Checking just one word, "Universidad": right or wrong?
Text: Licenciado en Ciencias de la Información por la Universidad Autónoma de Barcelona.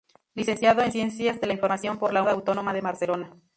wrong